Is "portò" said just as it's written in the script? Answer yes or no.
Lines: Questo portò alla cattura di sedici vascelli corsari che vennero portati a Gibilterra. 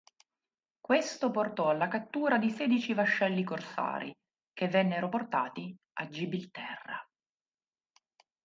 yes